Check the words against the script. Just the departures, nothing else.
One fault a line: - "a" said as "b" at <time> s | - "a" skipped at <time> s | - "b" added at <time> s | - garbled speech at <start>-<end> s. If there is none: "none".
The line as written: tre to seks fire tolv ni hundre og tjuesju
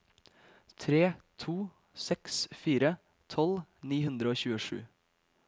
none